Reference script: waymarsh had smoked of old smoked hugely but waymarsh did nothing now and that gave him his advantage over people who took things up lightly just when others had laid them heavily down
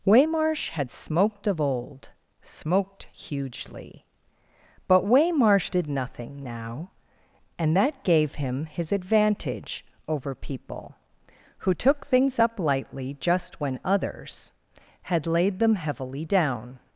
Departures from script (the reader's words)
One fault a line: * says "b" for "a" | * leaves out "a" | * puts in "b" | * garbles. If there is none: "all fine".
all fine